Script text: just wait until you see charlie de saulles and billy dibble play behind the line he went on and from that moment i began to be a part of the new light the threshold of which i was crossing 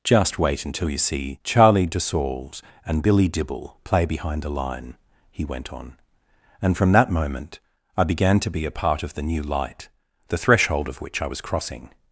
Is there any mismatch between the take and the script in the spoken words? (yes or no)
no